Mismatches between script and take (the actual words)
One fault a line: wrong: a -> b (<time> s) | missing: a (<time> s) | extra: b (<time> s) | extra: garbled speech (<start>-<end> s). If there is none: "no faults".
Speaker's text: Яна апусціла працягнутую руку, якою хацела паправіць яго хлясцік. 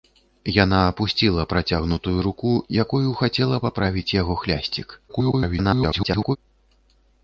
extra: garbled speech (5.1-6.4 s)